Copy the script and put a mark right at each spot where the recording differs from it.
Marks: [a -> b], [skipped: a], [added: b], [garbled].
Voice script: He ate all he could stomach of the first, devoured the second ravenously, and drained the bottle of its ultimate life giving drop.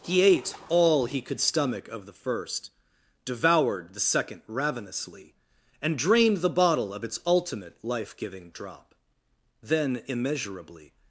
He ate all he could stomach of the first, devoured the second ravenously, and drained the bottle of its ultimate life giving drop. [added: Then immeasurably]